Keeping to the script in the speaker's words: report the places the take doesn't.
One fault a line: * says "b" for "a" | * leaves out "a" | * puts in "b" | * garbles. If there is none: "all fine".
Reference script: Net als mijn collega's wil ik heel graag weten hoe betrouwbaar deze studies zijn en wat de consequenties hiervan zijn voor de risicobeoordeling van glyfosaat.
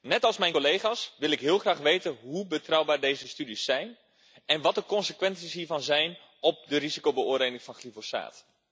all fine